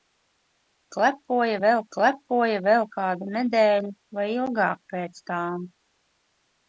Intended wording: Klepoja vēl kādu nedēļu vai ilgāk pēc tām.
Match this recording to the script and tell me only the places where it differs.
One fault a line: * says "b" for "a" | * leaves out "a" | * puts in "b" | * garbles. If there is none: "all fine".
* puts in "klepoja vēl"